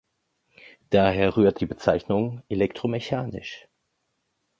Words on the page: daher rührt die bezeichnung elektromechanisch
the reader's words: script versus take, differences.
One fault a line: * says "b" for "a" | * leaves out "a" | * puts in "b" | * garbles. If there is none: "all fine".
all fine